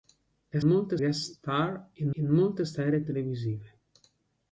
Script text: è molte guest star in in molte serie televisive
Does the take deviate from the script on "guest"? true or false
false